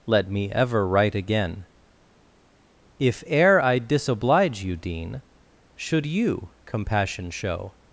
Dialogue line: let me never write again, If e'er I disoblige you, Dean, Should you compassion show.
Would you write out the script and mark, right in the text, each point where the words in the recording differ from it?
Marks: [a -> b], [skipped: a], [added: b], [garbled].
let me [never -> ever] write again, If e'er I disoblige you, Dean, Should you compassion show.